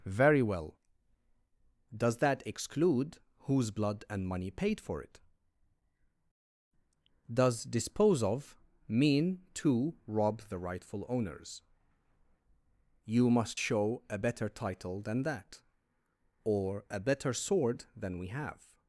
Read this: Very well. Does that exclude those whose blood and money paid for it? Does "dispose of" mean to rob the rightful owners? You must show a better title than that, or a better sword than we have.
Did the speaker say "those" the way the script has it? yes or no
no